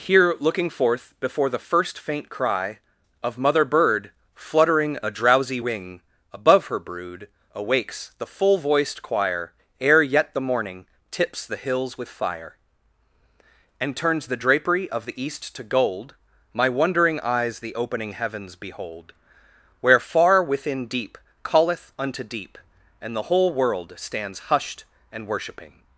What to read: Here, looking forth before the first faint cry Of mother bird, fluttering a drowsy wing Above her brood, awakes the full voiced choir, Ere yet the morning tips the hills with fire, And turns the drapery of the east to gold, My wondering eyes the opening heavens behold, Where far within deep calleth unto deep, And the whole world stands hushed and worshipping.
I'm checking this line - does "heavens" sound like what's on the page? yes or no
yes